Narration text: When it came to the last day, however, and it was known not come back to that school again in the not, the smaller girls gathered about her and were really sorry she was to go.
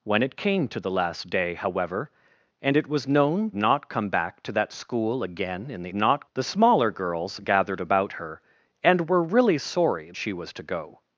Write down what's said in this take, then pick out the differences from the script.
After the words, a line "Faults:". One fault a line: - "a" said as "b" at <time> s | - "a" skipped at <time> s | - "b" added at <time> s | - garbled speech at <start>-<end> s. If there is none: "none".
When it came to the last day, however, and it was known not come back to that school again in the not, the smaller girls gathered about her and were really sorry she was to go.
Faults:
none